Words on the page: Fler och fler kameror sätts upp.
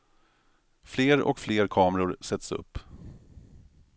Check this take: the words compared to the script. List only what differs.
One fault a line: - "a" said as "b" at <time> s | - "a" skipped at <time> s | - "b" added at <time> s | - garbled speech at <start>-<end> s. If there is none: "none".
none